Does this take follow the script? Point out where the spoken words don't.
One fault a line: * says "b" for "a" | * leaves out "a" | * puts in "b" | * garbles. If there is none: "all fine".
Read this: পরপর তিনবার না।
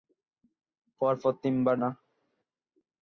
all fine